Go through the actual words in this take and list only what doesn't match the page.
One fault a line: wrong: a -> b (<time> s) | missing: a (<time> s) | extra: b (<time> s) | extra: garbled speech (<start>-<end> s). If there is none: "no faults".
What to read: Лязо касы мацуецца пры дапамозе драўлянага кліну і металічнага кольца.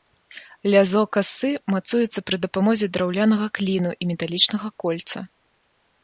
no faults